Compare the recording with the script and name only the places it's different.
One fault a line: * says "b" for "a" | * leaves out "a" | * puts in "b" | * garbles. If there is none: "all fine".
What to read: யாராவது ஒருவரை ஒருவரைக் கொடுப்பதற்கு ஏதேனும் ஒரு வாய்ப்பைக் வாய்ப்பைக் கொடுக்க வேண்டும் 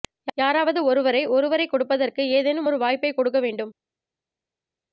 * leaves out "வாய்ப்பைக்"